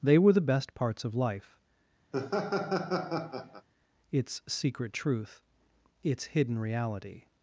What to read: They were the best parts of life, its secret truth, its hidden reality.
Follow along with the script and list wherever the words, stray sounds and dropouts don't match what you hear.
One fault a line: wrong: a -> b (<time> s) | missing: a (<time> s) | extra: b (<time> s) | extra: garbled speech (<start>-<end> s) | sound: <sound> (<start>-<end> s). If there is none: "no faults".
sound: laugh (2.1-3.7 s)